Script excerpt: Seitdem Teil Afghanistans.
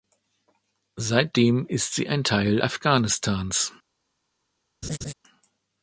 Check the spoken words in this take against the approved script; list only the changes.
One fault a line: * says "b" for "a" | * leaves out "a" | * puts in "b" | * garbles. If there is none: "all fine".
* puts in "ist sie ein"